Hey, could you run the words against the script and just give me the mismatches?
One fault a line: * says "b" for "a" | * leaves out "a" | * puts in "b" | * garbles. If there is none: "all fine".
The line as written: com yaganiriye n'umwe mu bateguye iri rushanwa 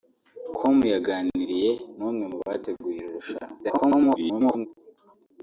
* garbles